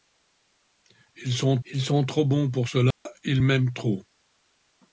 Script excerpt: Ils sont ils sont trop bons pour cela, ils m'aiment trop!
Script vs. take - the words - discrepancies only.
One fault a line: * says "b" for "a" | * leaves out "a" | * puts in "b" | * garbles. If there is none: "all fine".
all fine